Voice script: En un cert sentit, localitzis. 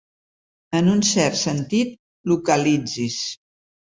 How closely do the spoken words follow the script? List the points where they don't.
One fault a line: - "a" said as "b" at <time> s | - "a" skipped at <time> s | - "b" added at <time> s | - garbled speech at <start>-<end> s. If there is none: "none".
none